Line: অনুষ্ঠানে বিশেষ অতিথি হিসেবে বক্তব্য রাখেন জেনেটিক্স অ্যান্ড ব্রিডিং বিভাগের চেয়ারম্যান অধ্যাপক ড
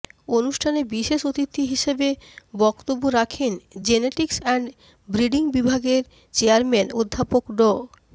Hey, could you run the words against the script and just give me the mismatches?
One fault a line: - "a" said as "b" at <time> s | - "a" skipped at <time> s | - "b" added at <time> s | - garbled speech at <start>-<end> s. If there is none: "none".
none